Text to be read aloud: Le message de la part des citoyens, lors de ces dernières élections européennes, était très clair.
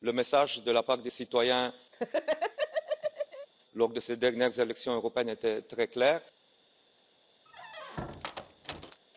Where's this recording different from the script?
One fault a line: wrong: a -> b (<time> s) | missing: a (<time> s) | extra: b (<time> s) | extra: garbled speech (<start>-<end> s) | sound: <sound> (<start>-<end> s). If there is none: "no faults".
sound: laugh (1.9-3.5 s)
sound: squeak (7.5-9.0 s)